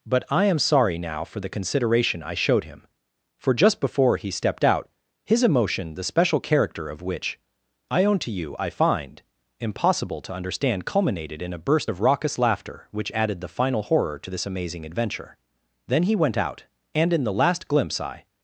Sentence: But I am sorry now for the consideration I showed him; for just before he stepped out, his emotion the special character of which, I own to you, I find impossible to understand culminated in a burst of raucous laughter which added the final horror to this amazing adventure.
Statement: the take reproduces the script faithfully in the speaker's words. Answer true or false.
false